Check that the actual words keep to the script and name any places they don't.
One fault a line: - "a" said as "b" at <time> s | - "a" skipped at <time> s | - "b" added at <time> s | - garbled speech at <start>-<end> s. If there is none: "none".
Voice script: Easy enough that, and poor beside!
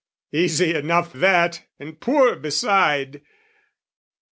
none